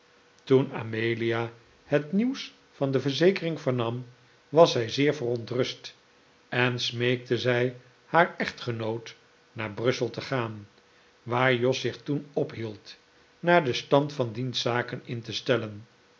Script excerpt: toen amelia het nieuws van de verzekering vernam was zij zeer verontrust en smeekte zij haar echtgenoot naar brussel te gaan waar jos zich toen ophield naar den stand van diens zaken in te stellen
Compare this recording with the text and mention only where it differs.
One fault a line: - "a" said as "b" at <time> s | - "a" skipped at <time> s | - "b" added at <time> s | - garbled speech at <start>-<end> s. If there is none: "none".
none